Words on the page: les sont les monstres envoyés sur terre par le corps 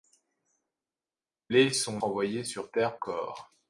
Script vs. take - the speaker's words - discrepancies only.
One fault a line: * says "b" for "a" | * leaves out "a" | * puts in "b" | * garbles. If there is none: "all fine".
* leaves out "les monstres"
* leaves out "par le"